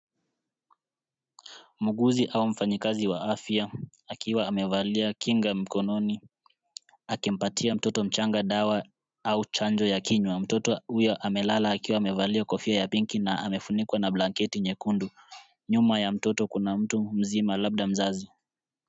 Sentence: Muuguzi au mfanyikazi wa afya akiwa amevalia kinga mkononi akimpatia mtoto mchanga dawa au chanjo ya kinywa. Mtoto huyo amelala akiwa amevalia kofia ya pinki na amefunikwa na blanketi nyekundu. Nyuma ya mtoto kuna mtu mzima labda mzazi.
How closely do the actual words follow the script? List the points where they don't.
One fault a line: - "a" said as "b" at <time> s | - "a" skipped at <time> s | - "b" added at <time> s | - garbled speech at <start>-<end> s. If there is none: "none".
none